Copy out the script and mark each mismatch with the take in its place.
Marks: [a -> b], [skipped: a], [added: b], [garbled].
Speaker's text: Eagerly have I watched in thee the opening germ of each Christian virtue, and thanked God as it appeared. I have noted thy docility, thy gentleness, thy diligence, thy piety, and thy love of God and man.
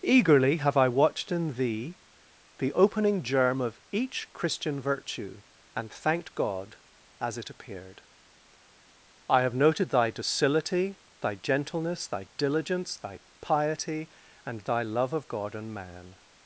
Eagerly have I watched in thee the opening germ of each Christian virtue, and thanked God as it appeared. I have noted thy docility, thy gentleness, thy diligence, thy piety, and thy love of God and man.